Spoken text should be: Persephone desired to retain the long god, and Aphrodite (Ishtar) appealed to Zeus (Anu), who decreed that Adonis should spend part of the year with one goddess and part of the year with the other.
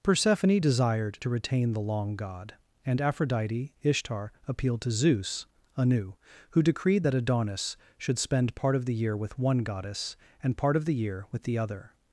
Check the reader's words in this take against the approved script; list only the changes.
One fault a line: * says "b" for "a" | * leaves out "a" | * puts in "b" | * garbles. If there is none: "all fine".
all fine